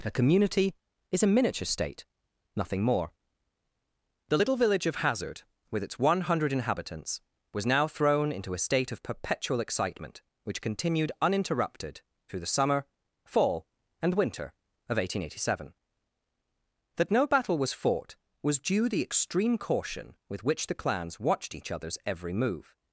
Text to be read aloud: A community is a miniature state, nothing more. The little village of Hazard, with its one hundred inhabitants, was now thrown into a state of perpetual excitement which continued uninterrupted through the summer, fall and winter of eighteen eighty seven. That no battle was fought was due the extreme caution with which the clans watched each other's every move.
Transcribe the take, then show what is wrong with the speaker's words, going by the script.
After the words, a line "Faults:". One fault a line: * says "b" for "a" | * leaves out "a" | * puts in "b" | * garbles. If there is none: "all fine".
A community is a miniature state, nothing more. The little village of Hazard, with its one hundred inhabitants, was now thrown into a state of perpetual excitement which continued uninterrupted through the summer, fall and winter of eighteen eighty seven. That no battle was fought was due the extreme caution with which the clans watched each other's every move.
Faults:
all fine